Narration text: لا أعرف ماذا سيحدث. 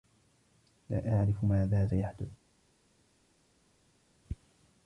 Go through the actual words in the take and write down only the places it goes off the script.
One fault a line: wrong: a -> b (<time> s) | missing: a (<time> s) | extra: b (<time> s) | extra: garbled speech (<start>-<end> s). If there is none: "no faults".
no faults